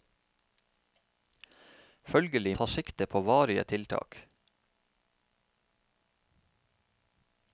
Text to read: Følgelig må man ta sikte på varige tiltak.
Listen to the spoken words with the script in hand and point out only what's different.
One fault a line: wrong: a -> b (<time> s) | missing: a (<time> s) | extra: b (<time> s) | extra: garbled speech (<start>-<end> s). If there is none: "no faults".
missing: må man (2.6 s)